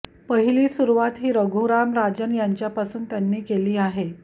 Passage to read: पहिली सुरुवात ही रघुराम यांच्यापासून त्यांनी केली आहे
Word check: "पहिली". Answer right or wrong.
right